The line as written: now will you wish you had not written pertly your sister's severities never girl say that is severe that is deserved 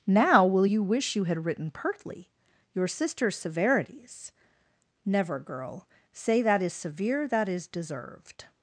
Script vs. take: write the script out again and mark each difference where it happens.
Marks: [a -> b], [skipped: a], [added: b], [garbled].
now will you wish you had [skipped: not] written pertly your sister's severities never girl say that is severe that is deserved